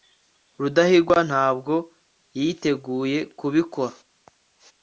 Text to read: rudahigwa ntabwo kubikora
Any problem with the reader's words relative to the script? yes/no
yes